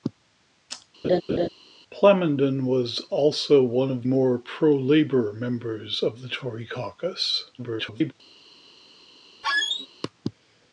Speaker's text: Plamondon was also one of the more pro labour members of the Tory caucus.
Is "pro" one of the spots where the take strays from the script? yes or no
no